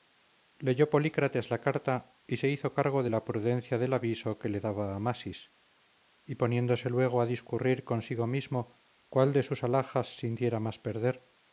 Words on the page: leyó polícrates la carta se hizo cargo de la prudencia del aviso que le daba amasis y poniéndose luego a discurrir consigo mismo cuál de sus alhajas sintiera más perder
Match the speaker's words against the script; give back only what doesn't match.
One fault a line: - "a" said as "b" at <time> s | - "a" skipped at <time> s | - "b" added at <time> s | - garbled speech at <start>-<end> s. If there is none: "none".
- "y" added at 2.2 s